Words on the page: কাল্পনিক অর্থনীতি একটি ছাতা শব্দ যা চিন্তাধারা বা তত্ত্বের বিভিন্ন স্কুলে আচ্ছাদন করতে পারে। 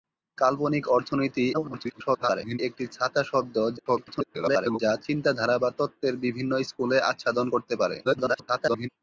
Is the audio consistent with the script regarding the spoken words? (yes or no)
no